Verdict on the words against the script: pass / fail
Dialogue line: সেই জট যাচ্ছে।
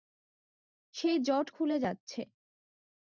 fail